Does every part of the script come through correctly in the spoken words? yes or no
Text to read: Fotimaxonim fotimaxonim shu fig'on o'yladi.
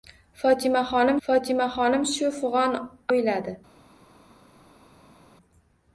yes